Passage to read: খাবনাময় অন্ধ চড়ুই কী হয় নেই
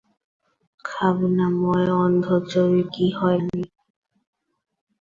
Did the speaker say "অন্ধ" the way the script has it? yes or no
yes